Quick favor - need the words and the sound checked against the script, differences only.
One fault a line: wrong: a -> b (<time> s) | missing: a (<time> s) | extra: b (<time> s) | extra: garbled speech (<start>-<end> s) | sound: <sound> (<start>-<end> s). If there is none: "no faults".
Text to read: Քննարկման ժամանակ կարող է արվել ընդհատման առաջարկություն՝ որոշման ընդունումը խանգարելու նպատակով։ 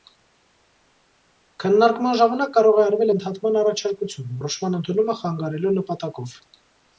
no faults